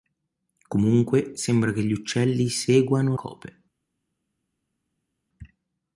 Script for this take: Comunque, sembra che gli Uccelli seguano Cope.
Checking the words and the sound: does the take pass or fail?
pass